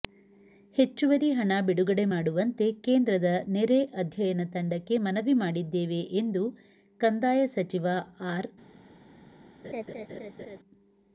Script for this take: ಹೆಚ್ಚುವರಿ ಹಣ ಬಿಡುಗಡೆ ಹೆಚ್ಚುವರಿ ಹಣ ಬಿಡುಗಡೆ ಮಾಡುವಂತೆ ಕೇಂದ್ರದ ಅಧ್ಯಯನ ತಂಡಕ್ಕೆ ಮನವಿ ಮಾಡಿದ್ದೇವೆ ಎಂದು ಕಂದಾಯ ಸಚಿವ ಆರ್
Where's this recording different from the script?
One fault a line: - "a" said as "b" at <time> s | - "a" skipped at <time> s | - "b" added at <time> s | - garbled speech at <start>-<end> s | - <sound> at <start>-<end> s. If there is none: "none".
- "ಹೆಚ್ಚುವರಿ ಹಣ ಬಿಡುಗಡೆ" skipped at 2.0 s
- "ನೆರೆ" added at 3.5 s
- laugh at 9.6-10.6 s